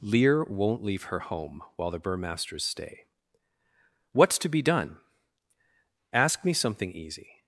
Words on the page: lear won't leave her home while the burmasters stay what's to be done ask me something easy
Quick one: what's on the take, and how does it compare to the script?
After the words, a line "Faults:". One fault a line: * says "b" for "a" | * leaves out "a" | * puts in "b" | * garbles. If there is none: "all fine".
lear won't leave her home while the burmasters stay what's to be done ask me something easy
Faults:
all fine